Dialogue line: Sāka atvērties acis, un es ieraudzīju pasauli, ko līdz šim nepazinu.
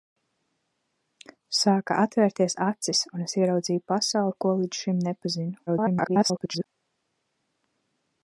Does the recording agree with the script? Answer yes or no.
no